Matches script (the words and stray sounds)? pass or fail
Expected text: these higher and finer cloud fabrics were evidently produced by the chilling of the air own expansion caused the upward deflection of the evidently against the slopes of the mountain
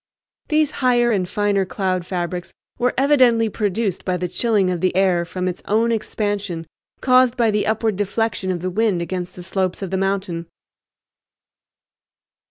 fail